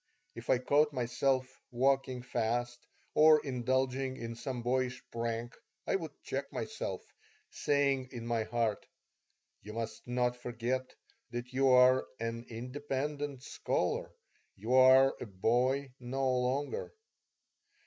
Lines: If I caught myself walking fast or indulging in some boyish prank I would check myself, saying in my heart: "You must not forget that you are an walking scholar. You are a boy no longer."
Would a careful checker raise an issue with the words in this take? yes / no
yes